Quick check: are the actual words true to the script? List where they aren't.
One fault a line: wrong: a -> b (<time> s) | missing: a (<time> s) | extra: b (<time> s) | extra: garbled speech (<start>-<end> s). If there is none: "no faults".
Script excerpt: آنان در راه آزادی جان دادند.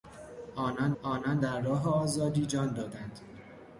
extra: آنان (1.0 s)